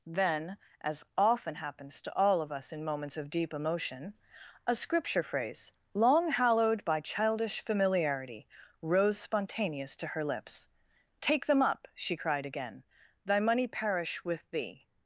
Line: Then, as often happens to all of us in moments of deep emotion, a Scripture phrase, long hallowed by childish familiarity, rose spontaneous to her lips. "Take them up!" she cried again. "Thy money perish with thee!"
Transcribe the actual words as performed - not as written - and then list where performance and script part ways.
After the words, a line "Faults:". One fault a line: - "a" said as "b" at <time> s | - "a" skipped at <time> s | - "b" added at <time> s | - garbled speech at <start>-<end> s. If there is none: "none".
Then, as often happens to all of us in moments of deep emotion, a Scripture phrase, long hallowed by childish familiarity, rose spontaneous to her lips. "Take them up!" she cried again. "Thy money perish with thee!"
Faults:
none